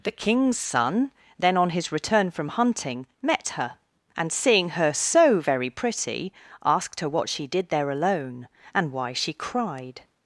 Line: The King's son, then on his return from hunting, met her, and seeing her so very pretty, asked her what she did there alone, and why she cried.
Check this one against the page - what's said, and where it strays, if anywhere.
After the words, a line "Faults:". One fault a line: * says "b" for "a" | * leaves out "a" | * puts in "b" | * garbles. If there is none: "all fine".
The King's son, then on his return from hunting, met her, and seeing her so very pretty, asked her what she did there alone, and why she cried.
Faults:
all fine